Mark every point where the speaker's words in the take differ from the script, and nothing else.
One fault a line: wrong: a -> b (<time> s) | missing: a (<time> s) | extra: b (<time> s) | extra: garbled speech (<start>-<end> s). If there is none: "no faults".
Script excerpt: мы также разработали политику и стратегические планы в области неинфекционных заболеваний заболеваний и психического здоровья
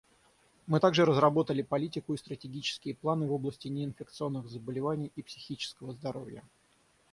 missing: заболеваний (5.1 s)